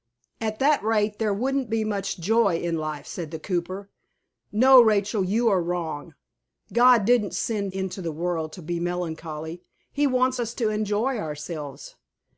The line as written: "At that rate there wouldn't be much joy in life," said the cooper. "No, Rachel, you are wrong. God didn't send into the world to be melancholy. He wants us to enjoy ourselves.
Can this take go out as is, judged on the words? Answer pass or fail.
pass